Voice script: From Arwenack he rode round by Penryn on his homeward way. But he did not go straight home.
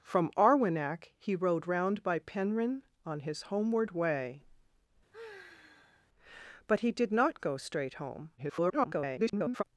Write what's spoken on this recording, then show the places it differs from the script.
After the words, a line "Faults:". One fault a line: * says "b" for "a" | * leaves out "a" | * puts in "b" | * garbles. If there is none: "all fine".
From Arwenack he rode round by Penryn on his homeward way. But he did not go straight home. [garbled]
Faults:
* garbles